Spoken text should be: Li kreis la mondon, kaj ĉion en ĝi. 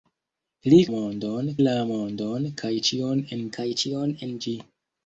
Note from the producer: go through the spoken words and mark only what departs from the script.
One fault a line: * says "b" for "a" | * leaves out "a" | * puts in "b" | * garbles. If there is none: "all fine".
* says "mondon" for "kreis"
* puts in "kaj ĉion en"